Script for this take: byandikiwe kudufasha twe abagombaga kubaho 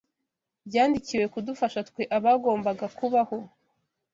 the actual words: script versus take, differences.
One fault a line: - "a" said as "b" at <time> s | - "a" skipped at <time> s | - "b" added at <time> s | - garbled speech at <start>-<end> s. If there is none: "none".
none